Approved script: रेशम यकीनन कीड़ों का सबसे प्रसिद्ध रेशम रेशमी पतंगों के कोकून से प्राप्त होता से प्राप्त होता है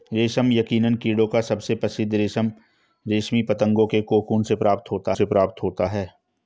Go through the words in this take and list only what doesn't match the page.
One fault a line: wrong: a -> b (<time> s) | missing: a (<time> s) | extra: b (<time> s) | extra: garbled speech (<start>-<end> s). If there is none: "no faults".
no faults